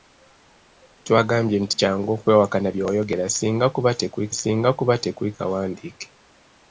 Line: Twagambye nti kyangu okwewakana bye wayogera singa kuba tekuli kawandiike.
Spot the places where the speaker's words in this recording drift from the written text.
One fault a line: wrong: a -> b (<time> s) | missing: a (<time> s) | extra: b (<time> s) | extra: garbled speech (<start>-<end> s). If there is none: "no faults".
extra: singa kuba tekuli (4.4 s)